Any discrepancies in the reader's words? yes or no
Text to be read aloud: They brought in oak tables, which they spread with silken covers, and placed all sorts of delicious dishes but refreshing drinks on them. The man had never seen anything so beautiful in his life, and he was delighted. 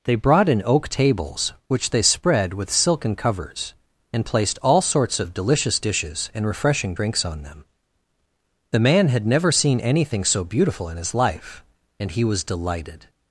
yes